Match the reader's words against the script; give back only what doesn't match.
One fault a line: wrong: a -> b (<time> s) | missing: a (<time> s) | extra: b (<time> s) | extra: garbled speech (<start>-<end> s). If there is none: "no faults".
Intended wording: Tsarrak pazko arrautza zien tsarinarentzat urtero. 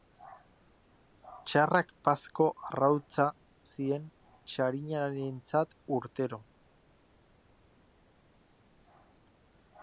no faults